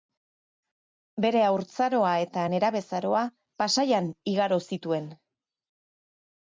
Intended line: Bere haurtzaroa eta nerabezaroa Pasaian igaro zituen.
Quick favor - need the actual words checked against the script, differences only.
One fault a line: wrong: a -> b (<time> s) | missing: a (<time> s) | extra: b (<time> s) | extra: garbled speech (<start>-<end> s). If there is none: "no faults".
no faults